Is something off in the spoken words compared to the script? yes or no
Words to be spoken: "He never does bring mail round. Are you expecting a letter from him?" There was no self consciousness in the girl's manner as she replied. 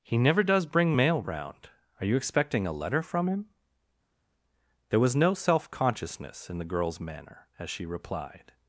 no